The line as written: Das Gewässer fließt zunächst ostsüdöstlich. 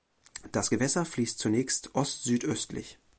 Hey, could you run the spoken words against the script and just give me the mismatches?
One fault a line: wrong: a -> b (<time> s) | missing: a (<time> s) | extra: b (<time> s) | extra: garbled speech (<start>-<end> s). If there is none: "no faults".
no faults